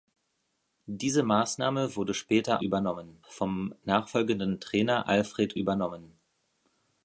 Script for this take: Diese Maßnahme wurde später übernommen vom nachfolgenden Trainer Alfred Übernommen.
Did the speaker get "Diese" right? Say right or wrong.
right